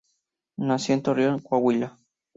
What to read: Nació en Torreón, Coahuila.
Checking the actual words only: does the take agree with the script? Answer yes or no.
yes